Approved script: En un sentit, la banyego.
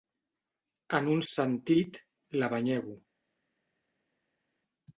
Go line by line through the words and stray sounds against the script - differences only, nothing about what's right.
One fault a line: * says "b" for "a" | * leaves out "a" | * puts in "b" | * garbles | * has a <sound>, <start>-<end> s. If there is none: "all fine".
all fine